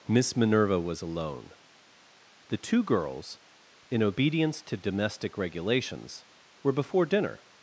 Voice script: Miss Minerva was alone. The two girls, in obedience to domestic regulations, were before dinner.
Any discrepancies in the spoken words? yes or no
no